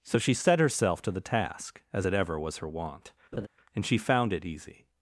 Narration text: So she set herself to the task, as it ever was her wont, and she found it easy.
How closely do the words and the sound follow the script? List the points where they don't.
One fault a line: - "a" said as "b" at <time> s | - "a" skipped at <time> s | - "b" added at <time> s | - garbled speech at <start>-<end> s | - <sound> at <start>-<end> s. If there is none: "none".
- laugh at 3.3-3.5 s